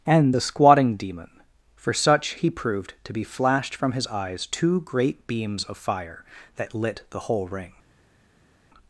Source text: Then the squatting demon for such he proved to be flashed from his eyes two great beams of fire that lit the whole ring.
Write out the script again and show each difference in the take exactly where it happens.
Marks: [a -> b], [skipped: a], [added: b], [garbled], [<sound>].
[Then -> And] the squatting demon for such he proved to be flashed from his eyes two great beams of fire that lit the whole ring.